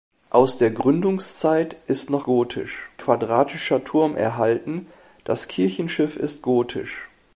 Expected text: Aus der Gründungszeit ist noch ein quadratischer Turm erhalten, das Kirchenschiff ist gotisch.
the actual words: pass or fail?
fail